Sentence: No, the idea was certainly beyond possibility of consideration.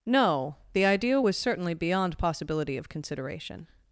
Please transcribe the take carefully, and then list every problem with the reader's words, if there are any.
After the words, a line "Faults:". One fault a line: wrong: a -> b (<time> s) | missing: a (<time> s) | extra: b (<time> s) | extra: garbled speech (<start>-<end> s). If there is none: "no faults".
No, the idea was certainly beyond possibility of consideration.
Faults:
no faults